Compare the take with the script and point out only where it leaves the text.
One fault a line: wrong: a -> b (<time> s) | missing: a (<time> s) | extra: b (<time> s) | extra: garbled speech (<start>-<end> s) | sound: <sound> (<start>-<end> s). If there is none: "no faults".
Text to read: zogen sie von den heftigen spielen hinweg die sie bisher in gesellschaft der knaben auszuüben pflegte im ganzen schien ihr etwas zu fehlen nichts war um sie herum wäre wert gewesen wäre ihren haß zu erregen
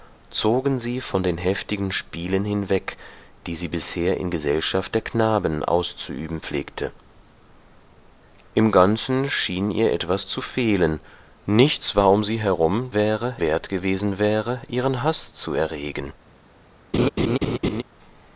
sound: laugh (16.9-17.8 s)